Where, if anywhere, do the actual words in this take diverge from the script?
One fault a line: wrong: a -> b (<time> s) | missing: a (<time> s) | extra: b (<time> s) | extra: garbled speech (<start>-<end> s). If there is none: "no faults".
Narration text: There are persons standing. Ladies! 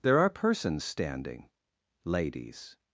no faults